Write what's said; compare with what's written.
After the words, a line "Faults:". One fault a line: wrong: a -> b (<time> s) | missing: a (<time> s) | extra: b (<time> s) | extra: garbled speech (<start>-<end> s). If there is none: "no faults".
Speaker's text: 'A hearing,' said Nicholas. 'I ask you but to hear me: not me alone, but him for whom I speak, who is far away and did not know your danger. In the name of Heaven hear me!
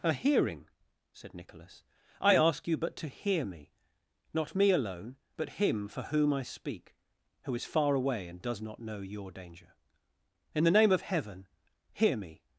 'A hearing,' said Nicholas. 'I ask you but to hear me: not me alone, but him for whom I speak, who is far away and does not know your danger. In the name of Heaven hear me!
Faults:
wrong: did -> does (8.4 s)